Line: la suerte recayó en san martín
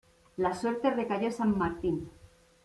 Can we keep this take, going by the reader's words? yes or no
yes